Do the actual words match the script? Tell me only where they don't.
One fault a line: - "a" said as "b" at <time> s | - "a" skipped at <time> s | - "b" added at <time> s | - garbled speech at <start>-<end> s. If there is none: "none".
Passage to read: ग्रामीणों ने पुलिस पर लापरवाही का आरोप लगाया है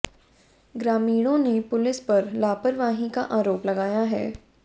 none